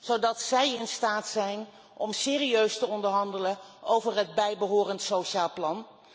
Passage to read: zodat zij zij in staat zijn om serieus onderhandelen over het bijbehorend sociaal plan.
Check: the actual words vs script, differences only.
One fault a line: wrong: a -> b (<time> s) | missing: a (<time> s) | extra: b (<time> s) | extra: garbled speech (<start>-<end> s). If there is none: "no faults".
missing: zij (0.8 s)
extra: te (2.8 s)